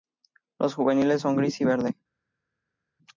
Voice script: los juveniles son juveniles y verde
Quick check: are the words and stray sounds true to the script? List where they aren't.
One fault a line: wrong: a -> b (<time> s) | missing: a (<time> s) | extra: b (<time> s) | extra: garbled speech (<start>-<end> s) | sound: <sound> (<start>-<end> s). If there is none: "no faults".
wrong: juveniles -> gris (1.4 s)